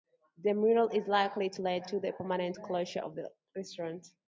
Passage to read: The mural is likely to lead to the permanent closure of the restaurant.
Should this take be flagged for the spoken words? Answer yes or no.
no